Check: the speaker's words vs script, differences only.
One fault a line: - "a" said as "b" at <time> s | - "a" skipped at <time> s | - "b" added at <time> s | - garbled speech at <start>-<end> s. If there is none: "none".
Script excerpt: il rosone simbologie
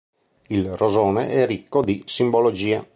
- "è ricco di" added at 1.3 s